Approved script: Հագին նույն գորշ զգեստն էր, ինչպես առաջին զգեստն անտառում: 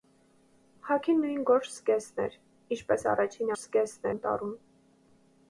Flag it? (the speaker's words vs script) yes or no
no